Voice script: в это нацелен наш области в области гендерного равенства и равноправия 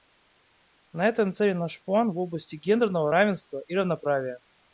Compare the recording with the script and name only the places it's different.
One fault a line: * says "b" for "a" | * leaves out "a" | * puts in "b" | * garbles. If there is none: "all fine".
* says "на" for "в"
* says "план" for "области"